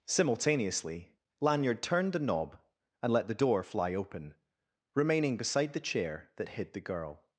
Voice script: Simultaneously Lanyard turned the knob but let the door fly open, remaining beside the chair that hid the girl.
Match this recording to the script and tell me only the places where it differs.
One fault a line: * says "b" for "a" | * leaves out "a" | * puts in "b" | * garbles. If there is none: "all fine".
* says "and" for "but"